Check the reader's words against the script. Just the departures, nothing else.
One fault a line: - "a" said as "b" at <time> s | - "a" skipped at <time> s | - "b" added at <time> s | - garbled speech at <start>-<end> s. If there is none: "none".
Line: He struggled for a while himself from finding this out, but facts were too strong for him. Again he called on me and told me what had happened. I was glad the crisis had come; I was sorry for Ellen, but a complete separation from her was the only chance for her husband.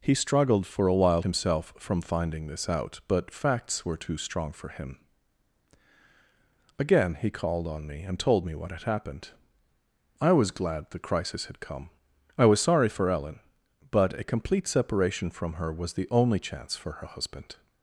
none